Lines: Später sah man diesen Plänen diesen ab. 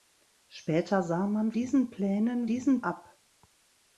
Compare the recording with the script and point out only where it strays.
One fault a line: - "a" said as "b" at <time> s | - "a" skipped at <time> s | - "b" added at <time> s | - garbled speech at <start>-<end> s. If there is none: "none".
none